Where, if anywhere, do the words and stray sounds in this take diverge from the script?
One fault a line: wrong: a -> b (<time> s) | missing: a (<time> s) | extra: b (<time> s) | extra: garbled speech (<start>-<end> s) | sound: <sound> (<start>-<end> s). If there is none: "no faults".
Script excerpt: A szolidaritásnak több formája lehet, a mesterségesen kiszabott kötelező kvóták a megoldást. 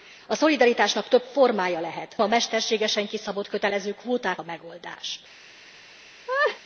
sound: laugh (6.3-6.6 s)